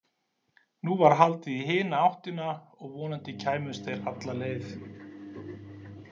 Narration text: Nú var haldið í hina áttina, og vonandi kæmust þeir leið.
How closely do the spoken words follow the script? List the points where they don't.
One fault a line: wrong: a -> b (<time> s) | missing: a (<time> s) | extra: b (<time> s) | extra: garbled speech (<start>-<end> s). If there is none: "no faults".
extra: alla (4.1 s)